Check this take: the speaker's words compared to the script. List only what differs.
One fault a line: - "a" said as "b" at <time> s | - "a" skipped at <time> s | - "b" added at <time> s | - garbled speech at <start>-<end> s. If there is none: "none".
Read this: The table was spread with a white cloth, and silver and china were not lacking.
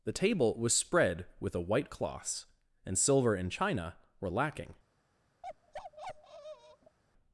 - "cloth" said as "cloths" at 1.9 s
- "not" skipped at 4.3 s